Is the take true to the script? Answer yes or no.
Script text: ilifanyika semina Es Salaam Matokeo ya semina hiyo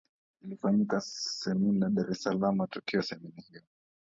no